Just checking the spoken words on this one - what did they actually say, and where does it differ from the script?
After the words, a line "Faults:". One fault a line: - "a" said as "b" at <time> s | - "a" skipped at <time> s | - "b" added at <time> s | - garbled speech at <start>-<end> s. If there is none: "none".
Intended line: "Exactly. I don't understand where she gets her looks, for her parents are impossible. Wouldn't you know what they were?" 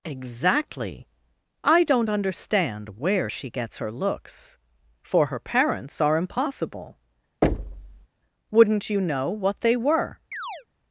"Exactly. I don't understand where she gets her looks, for her parents are impossible. Wouldn't you know what they were?"
Faults:
none